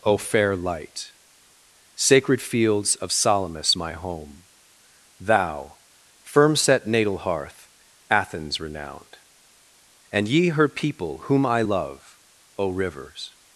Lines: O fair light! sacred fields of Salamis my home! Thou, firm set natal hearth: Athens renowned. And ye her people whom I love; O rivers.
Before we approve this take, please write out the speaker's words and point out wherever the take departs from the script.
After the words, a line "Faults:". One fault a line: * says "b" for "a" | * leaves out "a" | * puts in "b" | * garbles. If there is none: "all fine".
O fair light! sacred fields of Salamis my home! Thou, firm set natal hearth: Athens renowned. And ye her people whom I love; O rivers.
Faults:
all fine